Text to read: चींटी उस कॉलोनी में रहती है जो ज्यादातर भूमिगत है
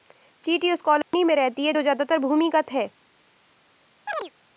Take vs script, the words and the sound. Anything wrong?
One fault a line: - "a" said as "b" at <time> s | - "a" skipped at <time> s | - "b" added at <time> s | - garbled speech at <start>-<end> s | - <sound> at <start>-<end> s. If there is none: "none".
- dropout at 1.0-1.1 s
- chirp at 4.1-4.3 s